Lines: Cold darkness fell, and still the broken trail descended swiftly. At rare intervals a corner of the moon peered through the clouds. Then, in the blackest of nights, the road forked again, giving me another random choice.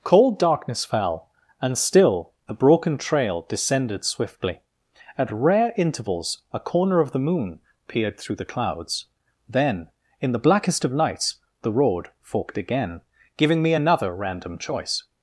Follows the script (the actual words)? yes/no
yes